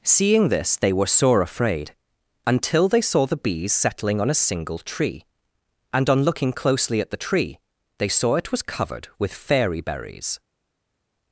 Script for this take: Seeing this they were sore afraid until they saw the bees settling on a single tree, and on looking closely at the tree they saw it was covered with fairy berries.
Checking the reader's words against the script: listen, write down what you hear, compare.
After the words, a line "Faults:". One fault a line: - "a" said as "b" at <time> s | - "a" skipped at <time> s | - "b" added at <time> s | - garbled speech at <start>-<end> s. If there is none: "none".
Seeing this they were sore afraid until they saw the bees settling on a single tree, and on looking closely at the tree they saw it was covered with fairy berries.
Faults:
none